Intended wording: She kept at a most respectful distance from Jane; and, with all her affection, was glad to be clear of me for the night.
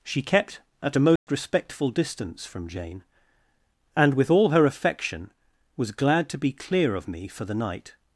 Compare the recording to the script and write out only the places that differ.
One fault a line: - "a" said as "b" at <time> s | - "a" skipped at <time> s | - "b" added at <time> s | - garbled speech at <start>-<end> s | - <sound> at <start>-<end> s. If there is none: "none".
- dropout at 1.2-1.3 s